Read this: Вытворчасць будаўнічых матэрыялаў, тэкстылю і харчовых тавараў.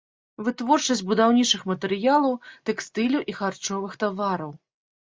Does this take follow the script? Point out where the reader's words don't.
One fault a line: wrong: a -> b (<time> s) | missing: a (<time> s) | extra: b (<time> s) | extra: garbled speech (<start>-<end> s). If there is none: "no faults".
no faults